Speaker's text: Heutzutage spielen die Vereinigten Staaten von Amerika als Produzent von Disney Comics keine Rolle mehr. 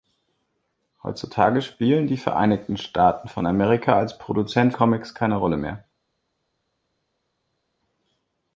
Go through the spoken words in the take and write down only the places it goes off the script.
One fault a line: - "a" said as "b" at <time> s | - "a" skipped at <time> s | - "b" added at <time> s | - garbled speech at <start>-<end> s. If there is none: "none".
- "von Disney" skipped at 4.7 s